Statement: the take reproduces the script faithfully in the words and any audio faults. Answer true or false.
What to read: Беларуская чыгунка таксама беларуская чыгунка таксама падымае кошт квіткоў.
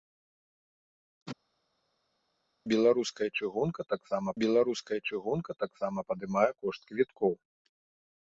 true